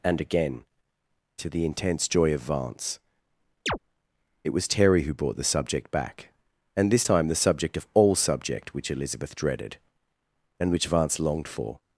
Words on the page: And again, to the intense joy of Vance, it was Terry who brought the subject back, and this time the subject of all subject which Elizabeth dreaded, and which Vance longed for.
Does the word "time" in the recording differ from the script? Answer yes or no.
no